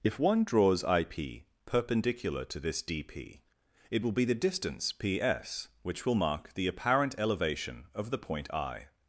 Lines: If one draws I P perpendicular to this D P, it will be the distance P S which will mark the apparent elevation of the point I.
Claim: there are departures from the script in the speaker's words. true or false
false